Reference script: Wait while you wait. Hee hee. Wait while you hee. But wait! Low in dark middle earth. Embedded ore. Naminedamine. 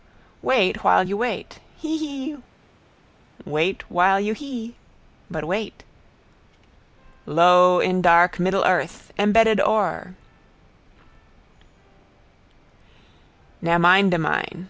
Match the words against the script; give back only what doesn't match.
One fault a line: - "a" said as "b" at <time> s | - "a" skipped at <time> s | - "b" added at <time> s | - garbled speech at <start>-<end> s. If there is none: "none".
none